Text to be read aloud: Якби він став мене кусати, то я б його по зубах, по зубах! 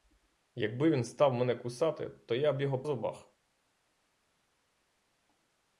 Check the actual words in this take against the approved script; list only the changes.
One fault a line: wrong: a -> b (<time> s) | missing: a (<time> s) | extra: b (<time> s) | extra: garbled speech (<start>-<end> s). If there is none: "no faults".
missing: по зубах по (2.8 s)